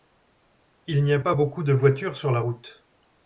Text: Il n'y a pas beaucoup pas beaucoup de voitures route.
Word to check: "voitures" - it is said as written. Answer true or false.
false